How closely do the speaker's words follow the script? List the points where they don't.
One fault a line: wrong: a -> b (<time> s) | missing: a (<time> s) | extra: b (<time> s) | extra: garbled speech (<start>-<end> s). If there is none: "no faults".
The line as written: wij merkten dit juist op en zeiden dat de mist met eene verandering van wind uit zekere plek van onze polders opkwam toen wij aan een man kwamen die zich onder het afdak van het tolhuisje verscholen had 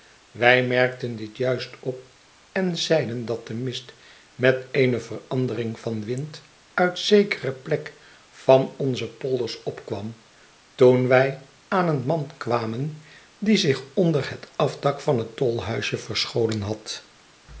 no faults